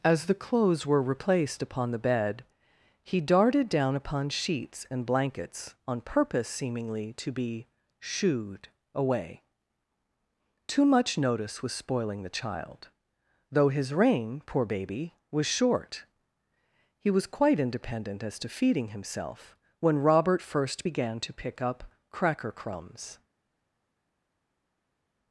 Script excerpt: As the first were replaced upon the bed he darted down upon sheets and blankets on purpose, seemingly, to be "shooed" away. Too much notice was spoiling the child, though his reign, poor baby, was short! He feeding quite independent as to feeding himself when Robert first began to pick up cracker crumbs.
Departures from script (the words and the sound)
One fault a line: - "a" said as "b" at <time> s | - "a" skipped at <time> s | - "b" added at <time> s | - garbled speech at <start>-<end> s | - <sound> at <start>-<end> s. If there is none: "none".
- "first" said as "clothes" at 0.3 s
- "feeding" said as "was" at 17.1 s